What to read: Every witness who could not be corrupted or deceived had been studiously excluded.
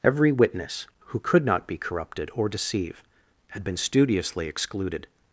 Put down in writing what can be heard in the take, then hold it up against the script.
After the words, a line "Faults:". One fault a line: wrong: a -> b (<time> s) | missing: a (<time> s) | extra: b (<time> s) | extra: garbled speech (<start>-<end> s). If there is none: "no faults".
Every witness who could not be corrupted or deceive had been studiously excluded.
Faults:
wrong: deceived -> deceive (2.5 s)